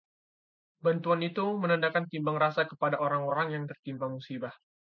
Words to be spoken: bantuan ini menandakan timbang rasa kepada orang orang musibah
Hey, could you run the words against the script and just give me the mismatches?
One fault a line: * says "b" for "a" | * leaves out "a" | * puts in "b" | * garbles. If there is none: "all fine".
* says "itu" for "ini"
* puts in "yang tertimpa"